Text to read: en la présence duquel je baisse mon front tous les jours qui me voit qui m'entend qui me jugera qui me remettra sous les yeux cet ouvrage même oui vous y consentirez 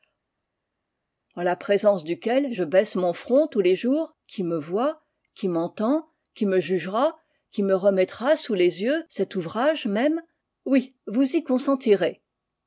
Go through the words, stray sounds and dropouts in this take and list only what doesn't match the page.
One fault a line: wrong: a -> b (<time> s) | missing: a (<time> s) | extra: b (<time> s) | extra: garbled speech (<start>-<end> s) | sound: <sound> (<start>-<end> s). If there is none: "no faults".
no faults